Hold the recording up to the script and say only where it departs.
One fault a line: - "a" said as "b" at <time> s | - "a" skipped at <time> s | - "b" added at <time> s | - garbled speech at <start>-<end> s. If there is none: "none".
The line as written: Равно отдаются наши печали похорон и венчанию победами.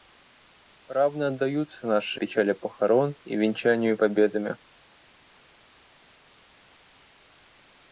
none